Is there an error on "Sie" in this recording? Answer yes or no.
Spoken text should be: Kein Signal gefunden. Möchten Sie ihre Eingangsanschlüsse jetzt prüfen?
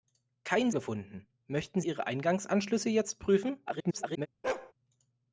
yes